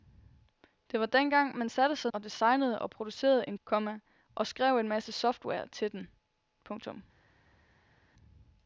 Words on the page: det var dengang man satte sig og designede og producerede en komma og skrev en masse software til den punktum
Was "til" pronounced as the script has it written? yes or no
yes